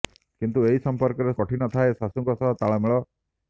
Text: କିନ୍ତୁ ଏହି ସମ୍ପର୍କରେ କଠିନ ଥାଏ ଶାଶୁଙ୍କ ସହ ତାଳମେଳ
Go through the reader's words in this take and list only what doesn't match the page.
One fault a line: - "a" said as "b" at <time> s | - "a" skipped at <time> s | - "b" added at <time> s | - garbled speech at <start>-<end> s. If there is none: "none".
none